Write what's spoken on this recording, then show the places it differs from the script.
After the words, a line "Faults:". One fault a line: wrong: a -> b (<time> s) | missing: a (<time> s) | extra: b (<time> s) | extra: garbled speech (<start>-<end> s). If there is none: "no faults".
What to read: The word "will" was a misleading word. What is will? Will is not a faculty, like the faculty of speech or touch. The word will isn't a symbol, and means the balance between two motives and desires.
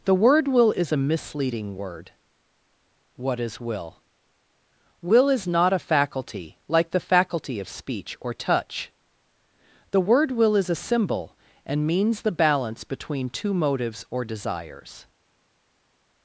The word "will" is a misleading word. What is will? Will is not a faculty, like the faculty of speech or touch. The word will is a symbol, and means the balance between two motives or desires.
Faults:
wrong: was -> is (0.7 s)
wrong: isn't -> is (10.6 s)
wrong: and -> or (14.1 s)